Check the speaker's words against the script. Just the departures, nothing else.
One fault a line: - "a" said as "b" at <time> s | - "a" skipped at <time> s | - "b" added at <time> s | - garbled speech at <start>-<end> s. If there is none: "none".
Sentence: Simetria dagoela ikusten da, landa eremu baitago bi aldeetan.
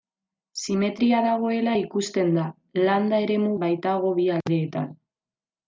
none